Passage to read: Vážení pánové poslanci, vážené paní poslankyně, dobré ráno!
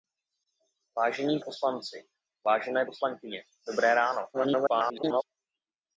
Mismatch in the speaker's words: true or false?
true